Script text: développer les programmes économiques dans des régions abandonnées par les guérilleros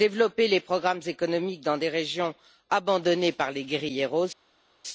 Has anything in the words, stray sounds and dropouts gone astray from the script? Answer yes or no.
no